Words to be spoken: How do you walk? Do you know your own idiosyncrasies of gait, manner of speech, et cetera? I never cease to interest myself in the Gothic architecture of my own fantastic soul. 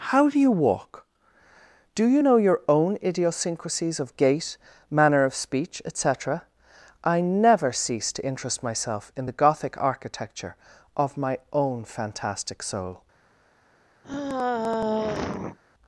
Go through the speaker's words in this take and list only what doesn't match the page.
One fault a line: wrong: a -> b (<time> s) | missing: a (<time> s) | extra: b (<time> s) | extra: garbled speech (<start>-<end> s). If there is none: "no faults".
no faults